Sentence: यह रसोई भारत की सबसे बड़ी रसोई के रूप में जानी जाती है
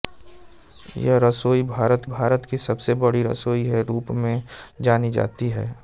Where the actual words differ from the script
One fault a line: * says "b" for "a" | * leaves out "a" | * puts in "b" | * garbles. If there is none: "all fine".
* puts in "भारत"